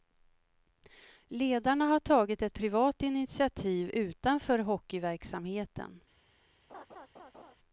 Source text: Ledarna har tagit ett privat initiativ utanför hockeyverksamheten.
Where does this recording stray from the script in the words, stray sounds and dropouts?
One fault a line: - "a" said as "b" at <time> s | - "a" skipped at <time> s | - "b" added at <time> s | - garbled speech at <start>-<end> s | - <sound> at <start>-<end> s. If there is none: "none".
- laugh at 6.7-7.6 s